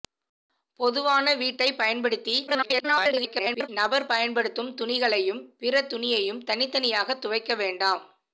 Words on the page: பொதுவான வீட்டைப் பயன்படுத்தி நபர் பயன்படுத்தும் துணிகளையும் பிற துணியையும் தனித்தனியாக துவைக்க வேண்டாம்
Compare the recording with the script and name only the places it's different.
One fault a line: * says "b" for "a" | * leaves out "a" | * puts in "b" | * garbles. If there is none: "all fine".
* garbles